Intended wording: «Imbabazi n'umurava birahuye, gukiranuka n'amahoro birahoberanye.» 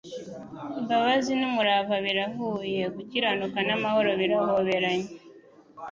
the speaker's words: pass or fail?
pass